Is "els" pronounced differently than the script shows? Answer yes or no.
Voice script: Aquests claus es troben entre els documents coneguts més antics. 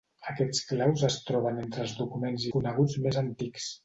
no